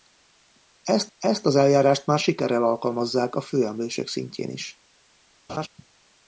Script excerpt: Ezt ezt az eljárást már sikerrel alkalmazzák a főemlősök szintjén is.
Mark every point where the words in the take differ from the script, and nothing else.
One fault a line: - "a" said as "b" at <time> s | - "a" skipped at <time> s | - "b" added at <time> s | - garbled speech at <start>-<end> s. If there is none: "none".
none